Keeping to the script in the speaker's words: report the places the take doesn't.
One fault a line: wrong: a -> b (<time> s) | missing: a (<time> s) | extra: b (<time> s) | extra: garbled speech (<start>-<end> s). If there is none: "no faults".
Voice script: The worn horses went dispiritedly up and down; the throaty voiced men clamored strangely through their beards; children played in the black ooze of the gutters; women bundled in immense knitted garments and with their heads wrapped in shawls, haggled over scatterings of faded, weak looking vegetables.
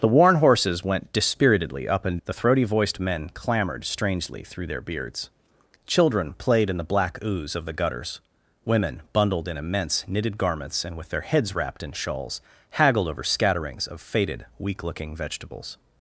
missing: down (2.2 s)